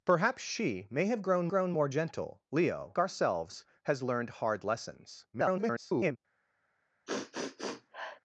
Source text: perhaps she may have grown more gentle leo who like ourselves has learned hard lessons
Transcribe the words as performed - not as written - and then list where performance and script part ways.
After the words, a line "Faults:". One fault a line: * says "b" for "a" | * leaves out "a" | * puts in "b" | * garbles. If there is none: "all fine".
perhaps she may have grown grown more gentle leo ourselves has learned hard lessons [garbled]
Faults:
* puts in "grown"
* leaves out "who like"
* garbles